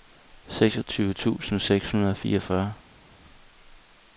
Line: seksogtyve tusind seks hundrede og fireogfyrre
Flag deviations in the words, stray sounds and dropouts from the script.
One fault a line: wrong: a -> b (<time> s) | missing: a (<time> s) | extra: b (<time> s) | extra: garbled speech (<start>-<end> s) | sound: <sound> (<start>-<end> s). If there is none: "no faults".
no faults